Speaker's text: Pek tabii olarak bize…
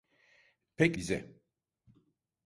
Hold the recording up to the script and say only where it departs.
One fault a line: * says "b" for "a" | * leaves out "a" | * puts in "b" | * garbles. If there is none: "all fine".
* leaves out "tabii olarak"